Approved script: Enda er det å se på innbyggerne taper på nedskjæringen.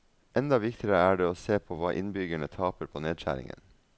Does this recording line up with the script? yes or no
no